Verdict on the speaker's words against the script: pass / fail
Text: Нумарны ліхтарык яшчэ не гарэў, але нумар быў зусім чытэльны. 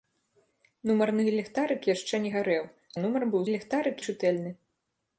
fail